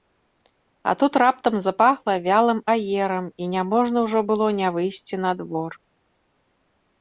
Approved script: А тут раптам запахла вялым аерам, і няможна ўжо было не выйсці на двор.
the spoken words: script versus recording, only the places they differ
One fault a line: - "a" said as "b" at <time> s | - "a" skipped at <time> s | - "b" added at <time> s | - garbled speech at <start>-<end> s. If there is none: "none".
none